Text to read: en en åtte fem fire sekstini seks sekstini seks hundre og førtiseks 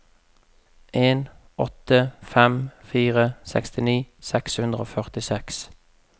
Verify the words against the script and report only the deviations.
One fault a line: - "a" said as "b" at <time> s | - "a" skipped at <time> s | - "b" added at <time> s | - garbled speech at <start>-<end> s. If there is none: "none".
- "en" skipped at 1.3 s
- "sekstini seks" skipped at 4.6 s